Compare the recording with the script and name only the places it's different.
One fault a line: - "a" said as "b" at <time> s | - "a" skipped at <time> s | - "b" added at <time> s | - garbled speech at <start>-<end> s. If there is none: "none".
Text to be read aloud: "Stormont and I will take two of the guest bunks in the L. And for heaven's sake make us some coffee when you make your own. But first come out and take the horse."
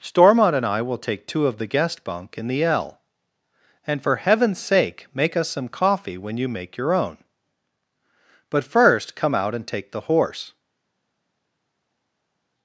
- "bunks" said as "bunk" at 2.0 s